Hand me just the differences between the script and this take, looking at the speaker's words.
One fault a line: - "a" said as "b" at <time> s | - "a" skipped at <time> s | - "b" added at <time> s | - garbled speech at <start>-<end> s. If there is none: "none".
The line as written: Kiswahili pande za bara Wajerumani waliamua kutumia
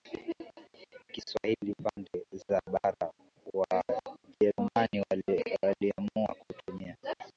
none